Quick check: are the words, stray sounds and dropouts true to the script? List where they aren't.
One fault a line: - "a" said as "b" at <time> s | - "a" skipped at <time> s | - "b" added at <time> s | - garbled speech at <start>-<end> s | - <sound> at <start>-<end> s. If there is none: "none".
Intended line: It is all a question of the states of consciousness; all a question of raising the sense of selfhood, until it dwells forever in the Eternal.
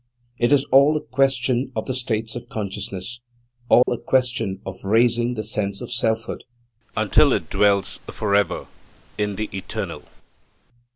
- dropout at 3.8-3.9 s